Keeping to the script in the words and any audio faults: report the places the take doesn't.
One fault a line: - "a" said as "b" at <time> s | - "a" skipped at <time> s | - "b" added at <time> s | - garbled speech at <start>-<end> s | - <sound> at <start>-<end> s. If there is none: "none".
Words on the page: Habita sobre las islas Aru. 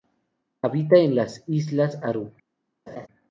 - "sobre" said as "en" at 1.0 s
- laugh at 2.9-3.1 s